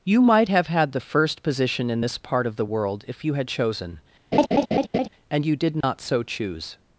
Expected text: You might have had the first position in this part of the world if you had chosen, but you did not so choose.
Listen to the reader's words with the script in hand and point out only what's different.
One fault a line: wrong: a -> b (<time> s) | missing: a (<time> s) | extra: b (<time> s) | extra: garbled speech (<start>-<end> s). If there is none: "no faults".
wrong: but -> and (5.3 s)